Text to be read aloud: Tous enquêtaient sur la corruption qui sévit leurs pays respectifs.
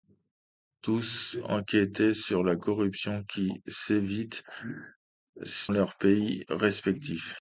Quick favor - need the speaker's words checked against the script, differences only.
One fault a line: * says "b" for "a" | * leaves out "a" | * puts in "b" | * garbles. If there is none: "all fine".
all fine